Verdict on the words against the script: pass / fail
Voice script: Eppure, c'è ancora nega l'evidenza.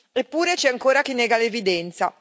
fail